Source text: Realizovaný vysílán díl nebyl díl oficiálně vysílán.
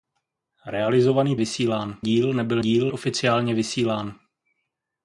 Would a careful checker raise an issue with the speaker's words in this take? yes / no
no